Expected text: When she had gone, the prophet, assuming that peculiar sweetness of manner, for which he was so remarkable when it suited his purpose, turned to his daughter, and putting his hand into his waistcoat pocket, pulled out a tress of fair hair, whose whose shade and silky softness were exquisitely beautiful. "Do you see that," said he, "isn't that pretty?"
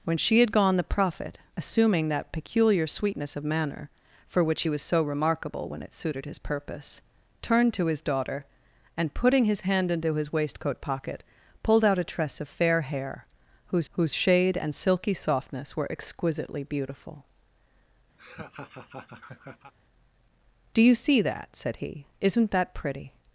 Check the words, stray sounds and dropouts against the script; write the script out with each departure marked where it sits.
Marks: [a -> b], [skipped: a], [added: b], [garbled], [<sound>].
When she had gone, the prophet, assuming that peculiar sweetness of manner, for which he was so remarkable when it suited his purpose, turned to his daughter, and putting his hand into his waistcoat pocket, pulled out a tress of fair hair, whose whose shade and silky softness were exquisitely beautiful. [laugh] "Do you see that," said he, "isn't that pretty?"